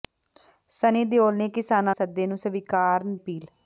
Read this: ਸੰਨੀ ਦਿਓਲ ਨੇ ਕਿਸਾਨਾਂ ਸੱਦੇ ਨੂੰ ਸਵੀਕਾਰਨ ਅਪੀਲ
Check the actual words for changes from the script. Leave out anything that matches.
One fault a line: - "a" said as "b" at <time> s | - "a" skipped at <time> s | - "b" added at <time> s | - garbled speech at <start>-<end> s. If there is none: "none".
none